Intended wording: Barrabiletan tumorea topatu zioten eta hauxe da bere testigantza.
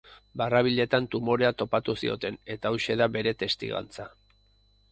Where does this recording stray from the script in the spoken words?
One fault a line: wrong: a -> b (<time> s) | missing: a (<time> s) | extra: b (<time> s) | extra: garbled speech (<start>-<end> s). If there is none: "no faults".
no faults